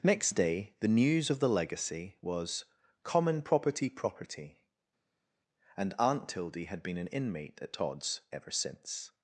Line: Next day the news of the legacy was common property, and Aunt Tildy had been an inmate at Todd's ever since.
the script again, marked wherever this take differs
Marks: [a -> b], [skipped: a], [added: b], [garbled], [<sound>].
Next day the news of the legacy was common property, [added: property] and Aunt Tildy had been an inmate at Todd's ever since.